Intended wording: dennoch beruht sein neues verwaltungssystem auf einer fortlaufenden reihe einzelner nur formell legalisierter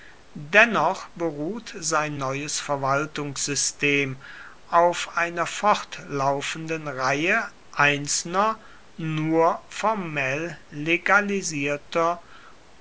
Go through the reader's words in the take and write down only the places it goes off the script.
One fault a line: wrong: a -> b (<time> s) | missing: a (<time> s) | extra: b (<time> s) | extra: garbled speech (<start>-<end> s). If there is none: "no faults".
no faults